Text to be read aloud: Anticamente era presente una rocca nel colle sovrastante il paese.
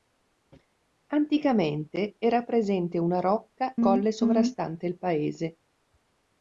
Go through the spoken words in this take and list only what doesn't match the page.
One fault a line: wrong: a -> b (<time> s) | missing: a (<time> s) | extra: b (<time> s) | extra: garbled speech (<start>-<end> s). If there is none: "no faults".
missing: nel (3.8 s)